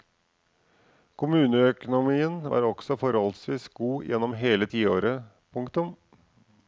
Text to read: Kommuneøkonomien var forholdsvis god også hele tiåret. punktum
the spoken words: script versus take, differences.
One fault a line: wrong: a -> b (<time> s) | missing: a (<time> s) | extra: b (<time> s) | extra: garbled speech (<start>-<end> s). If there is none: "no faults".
extra: også (2.7 s)
wrong: også -> gjennom (4.1 s)